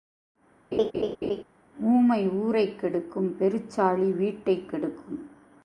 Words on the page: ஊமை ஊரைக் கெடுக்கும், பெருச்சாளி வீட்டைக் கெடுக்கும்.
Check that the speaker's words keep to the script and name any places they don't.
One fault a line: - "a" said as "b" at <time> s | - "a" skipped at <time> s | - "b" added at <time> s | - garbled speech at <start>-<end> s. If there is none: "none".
none